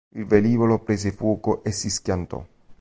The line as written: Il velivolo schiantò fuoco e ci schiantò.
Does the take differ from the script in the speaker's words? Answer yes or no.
yes